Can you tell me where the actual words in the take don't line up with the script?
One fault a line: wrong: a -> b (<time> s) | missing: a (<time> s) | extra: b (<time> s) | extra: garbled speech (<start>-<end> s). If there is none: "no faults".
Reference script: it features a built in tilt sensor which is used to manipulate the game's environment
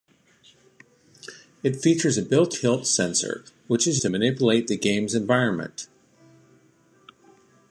missing: in (2.5 s)
missing: used (4.0 s)